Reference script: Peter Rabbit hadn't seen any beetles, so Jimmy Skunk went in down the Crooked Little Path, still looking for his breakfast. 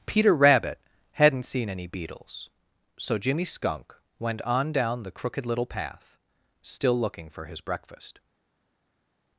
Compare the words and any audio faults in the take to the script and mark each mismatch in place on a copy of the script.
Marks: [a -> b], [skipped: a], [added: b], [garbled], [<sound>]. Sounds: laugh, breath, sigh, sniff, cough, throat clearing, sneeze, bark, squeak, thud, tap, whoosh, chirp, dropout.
Peter Rabbit hadn't seen any beetles, so Jimmy Skunk went [in -> on] down the Crooked Little Path, still looking for his breakfast.